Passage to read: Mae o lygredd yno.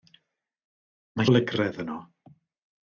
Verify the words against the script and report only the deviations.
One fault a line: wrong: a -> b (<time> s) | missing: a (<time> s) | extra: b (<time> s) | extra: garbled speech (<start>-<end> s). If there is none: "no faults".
no faults